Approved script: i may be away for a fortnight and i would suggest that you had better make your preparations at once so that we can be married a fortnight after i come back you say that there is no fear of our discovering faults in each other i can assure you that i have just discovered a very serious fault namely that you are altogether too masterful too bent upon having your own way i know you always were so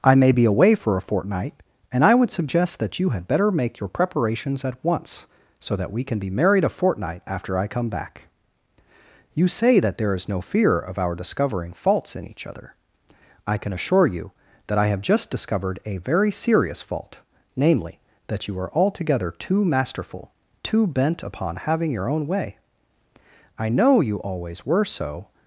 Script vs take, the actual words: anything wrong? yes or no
no